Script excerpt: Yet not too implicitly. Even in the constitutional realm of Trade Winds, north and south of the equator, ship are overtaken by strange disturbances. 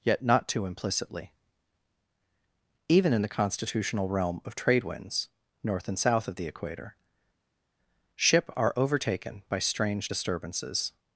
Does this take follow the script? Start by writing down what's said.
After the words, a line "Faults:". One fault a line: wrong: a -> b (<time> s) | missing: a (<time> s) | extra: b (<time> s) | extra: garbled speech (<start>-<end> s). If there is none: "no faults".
Yet not too implicitly. Even in the constitutional realm of Trade Winds, north and south of the equator, ship are overtaken by strange disturbances.
Faults:
no faults